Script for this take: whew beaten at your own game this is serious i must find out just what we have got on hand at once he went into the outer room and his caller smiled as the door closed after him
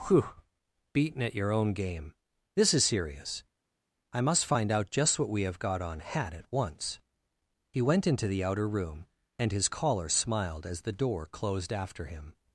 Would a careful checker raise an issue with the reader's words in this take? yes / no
yes